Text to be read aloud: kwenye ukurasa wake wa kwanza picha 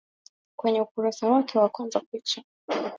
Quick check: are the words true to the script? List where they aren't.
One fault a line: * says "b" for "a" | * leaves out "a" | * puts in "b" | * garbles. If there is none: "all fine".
all fine